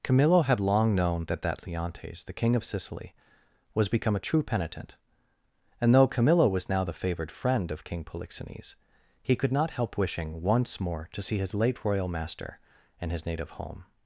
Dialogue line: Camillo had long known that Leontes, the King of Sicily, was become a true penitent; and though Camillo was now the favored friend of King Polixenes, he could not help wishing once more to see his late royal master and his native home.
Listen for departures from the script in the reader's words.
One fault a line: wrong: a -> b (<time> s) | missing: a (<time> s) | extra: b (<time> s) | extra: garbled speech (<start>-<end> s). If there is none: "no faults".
extra: that (1.4 s)